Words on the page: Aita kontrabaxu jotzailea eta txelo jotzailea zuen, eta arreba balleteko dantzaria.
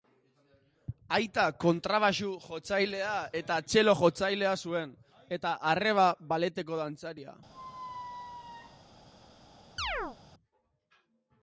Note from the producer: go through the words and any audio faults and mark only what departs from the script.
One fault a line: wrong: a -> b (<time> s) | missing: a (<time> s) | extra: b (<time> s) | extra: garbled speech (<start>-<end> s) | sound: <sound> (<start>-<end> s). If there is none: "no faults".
sound: squeak (7.5-8.9 s)
sound: chirp (9.8-10.2 s)